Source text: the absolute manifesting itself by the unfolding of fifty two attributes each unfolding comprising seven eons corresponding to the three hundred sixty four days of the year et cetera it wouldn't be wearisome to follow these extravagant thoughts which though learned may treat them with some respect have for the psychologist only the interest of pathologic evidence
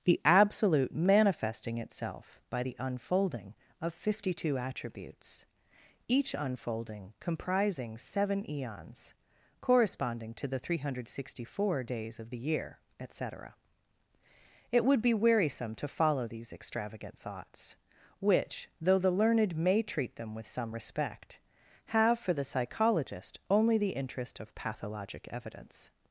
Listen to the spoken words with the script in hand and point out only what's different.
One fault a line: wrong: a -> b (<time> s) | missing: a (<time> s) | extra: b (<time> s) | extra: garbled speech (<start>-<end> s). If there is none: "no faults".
wrong: wouldn't -> would (14.9 s)
extra: the (19.0 s)